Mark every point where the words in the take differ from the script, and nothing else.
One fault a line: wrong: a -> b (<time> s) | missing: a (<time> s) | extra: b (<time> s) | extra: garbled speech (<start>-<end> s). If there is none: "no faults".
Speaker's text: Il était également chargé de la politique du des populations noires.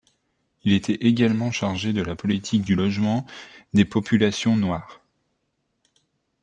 extra: logement (2.7 s)